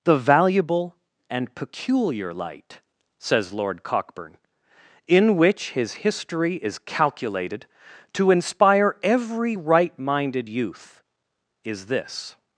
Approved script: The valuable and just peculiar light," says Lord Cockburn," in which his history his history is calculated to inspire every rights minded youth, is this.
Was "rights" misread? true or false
true